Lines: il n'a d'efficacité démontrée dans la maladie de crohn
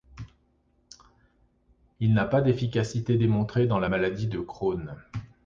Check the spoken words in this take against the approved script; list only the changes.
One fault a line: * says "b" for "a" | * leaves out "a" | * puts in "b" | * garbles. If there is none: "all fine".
* puts in "pas"